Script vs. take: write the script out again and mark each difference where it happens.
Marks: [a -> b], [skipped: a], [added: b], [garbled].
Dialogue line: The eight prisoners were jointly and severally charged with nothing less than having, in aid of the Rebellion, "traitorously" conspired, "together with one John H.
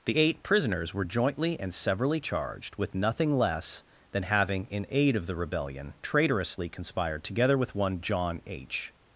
The eight prisoners were jointly and severally charged with nothing less than having, in aid of the Rebellion, "traitorously" conspired, "together with one John H.